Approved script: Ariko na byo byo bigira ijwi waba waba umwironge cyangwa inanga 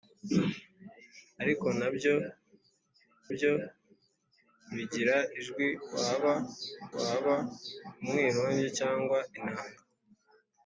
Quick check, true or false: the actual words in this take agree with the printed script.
true